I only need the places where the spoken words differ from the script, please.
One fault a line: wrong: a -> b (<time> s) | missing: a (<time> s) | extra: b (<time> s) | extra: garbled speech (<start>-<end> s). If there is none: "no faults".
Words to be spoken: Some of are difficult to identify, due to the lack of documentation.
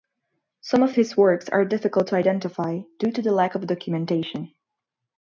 extra: his works (0.9 s)